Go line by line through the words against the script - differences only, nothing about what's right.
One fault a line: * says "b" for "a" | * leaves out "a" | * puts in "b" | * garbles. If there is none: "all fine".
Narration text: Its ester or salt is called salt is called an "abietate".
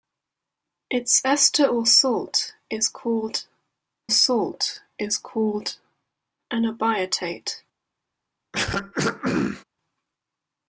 all fine